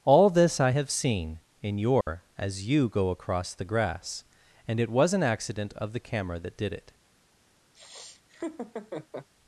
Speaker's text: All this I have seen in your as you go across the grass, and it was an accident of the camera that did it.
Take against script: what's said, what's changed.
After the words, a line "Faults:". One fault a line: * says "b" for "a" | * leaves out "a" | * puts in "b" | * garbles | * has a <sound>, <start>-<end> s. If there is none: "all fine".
All this I have seen in your as you go across the grass, and it was an accident of the camera that did it.
Faults:
* has a dropout, 2.0-2.1 s
* has a laugh, 7.7-9.3 s